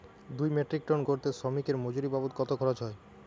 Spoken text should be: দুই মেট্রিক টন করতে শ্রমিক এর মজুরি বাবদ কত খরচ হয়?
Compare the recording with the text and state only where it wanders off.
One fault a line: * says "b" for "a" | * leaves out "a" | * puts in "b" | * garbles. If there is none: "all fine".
all fine